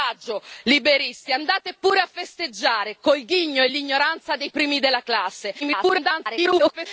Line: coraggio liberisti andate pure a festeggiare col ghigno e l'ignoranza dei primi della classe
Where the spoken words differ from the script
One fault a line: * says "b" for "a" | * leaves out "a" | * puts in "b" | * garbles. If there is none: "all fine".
* garbles